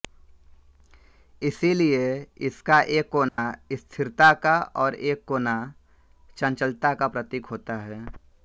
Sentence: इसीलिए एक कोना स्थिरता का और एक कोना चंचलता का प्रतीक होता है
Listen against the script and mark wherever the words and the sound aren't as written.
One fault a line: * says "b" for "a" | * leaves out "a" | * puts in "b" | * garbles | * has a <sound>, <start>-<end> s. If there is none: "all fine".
* puts in "इसका"
* has a dropout, 3.3-3.4 s